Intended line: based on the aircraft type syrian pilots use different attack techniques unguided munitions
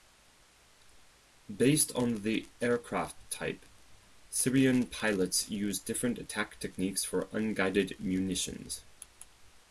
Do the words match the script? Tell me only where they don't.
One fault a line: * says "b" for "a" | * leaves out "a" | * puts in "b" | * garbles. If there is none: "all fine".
* puts in "for"